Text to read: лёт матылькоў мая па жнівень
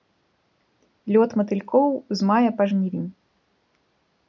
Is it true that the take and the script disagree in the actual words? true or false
true